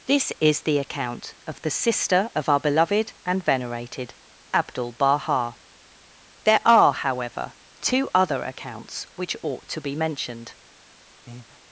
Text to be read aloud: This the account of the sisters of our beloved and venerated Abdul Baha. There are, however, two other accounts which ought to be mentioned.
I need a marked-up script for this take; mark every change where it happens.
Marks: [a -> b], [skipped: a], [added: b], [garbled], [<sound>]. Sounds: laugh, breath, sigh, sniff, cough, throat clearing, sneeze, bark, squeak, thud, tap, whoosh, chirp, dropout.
This [added: is] the account of the [sisters -> sister] of our beloved and venerated Abdul Baha. There are, however, two other accounts which ought to be mentioned. [breath]